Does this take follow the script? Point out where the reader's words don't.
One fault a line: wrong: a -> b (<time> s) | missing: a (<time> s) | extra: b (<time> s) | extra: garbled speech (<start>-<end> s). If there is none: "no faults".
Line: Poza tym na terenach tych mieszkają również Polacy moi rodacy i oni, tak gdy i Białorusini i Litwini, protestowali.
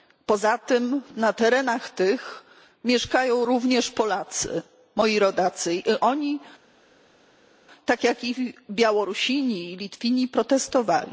wrong: gdy -> jak (8.0 s)